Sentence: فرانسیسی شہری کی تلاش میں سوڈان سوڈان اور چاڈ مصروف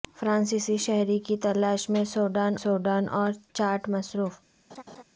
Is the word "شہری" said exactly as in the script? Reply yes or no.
yes